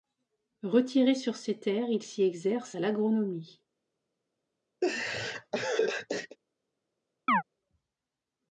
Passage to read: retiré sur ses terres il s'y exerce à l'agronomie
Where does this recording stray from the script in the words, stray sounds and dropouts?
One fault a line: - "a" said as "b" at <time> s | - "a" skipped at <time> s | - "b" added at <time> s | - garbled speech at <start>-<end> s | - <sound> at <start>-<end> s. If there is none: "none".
- laugh at 4.8-6.4 s
- chirp at 7.3-7.4 s